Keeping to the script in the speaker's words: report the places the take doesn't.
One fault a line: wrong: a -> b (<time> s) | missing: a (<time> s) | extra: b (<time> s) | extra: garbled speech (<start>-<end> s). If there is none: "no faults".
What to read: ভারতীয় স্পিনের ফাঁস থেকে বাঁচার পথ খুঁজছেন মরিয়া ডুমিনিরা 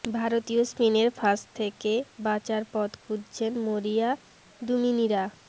no faults